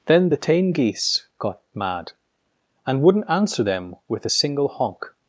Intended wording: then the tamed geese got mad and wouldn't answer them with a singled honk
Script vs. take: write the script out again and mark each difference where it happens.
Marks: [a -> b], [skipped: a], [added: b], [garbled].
then the [tamed -> tame] geese got mad and wouldn't answer them with a [singled -> single] honk